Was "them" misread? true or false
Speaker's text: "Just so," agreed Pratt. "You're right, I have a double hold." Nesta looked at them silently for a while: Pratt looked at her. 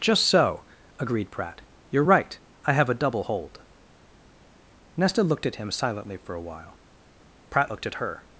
true